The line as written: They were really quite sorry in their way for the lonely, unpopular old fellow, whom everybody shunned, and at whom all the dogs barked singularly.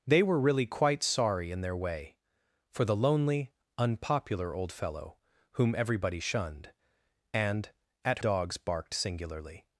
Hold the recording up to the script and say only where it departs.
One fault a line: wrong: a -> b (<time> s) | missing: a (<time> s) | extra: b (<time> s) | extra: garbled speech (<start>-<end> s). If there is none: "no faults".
missing: whom all the (8.2 s)